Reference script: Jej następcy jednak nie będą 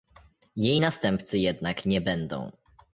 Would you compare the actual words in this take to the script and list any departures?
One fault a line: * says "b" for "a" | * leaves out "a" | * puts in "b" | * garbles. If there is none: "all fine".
all fine